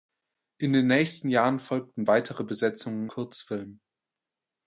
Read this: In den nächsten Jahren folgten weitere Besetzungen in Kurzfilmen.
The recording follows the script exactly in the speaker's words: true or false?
false